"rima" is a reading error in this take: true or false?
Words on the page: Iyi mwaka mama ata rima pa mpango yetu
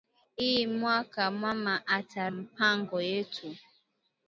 true